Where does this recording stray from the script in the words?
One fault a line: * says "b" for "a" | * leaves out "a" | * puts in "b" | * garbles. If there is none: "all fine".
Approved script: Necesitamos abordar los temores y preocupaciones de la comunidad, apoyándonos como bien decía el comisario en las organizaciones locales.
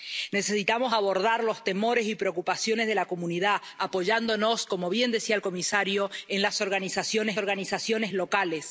* puts in "organizaciones"